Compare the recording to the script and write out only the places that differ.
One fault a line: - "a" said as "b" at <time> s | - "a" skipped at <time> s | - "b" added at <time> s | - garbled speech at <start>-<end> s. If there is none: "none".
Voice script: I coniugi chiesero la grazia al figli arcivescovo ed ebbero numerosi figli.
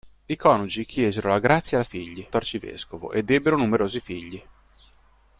none